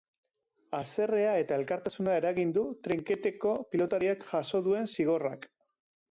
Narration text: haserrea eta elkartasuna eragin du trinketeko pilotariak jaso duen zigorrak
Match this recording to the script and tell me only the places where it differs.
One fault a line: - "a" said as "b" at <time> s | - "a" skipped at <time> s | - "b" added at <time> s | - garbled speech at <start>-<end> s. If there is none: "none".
none